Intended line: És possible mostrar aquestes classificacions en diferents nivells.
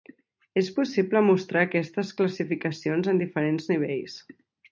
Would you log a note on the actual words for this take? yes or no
no